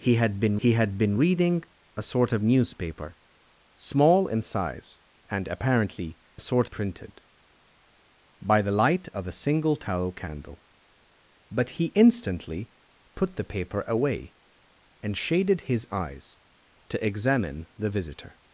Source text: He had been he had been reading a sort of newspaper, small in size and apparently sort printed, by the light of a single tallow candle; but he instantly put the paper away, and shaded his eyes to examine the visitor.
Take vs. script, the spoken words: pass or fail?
pass